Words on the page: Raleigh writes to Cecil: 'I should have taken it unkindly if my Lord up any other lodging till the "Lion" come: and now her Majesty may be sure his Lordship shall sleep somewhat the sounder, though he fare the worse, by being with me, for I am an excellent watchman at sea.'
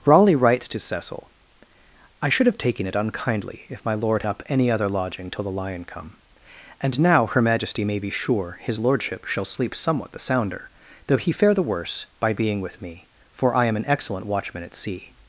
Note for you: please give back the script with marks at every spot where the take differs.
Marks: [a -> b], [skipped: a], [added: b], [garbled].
Raleigh writes to Cecil: 'I should have taken it unkindly if my Lord up any other lodging till the "Lion" come: and now her Majesty may be sure his Lordship shall sleep somewhat the sounder, though he fare the worse, by being with me, for I am an excellent watchman at sea.'